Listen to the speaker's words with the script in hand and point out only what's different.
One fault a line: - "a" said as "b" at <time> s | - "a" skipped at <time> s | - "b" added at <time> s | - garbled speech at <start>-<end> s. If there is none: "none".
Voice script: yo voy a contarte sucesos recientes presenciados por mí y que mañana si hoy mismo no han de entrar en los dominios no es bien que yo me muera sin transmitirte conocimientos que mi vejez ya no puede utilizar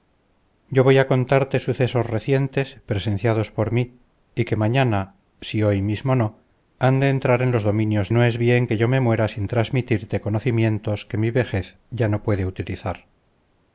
none